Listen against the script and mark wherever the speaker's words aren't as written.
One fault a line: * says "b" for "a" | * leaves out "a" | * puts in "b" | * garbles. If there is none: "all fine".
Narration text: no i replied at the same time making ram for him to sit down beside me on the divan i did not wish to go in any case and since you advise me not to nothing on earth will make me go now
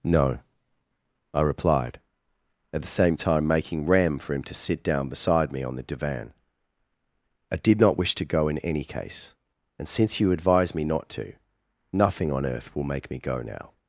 all fine